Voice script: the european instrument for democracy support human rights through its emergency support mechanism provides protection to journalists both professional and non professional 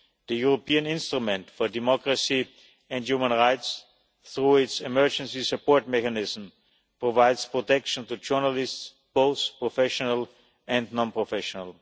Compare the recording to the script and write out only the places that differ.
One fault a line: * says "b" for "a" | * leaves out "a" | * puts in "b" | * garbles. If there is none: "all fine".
* says "and" for "support"